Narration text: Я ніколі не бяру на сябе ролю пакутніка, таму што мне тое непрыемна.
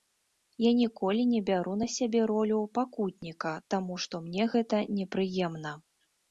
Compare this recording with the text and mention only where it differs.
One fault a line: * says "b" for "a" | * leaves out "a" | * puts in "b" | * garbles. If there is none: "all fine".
* says "гэта" for "тое"